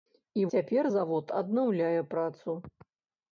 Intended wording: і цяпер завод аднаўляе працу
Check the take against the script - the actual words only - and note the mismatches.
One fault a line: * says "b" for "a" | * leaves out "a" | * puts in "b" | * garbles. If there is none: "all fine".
all fine